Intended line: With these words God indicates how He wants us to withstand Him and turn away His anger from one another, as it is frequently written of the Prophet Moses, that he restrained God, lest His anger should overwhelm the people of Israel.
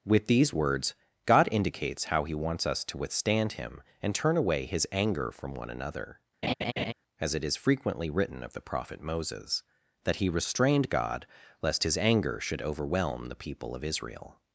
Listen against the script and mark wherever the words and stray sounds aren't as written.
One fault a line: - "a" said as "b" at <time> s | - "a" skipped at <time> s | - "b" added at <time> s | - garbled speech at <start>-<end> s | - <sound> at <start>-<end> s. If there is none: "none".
- laugh at 6.4-6.9 s